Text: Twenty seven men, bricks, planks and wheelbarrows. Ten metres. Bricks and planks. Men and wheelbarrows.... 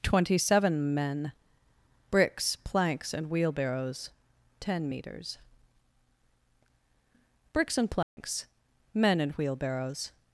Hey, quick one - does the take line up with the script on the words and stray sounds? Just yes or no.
no